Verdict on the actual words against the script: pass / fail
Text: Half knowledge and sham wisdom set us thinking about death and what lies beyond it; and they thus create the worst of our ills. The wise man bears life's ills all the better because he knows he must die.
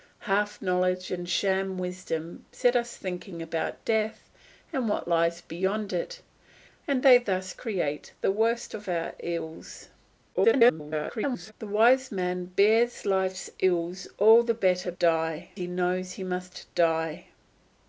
fail